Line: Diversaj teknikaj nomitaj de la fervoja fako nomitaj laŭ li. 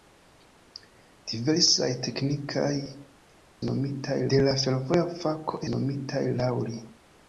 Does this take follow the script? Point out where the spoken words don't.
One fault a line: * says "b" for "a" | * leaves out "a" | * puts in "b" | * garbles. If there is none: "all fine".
all fine